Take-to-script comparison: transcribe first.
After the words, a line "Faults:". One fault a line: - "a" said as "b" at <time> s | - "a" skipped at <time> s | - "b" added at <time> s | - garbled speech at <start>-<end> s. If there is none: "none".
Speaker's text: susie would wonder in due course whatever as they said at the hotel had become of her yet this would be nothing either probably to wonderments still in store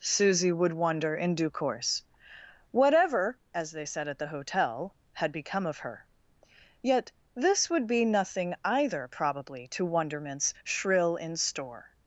susie would wonder in due course whatever as they said at the hotel had become of her yet this would be nothing either probably to wonderments shrill in store
Faults:
- "still" said as "shrill" at 10.6 s